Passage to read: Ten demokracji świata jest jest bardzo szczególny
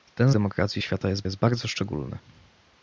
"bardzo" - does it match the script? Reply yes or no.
yes